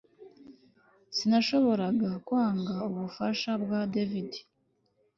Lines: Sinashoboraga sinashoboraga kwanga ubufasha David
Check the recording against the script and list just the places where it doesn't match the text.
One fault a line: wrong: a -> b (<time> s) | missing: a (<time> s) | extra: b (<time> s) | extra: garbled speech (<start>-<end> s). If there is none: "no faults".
missing: sinashoboraga (2.1 s)
extra: bwa (3.6 s)